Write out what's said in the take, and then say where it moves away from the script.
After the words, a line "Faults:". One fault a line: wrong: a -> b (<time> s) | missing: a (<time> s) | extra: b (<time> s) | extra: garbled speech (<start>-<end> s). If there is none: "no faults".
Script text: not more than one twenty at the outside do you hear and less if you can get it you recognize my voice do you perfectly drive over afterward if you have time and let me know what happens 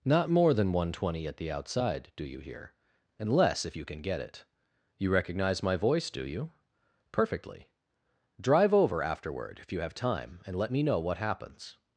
not more than one twenty at the outside do you hear and less if you can get it you recognize my voice do you perfectly drive over afterward if you have time and let me know what happens
Faults:
no faults